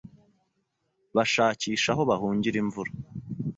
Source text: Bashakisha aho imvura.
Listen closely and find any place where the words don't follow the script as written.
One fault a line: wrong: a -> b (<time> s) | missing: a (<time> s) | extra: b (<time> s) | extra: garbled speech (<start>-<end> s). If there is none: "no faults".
extra: bahungira (2.1 s)